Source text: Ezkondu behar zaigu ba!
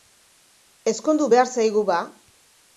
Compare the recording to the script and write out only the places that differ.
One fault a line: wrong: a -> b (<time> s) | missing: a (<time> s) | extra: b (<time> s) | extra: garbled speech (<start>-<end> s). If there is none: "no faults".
no faults